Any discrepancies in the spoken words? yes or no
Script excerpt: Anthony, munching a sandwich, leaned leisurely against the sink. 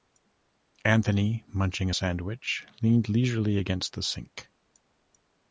no